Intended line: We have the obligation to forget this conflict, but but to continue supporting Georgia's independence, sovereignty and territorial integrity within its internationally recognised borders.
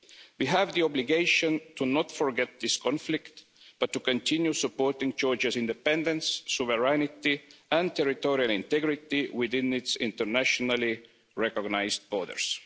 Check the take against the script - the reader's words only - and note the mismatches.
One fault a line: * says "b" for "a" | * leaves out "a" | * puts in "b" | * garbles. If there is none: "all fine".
* puts in "not"
* leaves out "but"